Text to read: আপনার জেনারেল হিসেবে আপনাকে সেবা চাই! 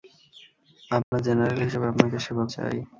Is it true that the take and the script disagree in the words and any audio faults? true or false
true